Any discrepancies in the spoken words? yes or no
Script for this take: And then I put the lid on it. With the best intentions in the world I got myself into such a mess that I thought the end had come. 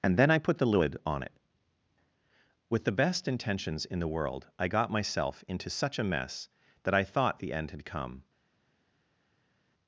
no